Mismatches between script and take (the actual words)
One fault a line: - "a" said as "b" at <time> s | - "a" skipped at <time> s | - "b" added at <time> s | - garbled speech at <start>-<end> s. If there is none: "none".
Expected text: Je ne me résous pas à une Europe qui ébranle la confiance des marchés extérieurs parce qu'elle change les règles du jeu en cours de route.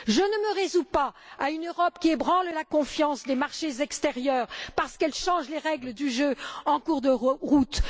none